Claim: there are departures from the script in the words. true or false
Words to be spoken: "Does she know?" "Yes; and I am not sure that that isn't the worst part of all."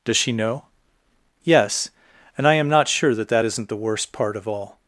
false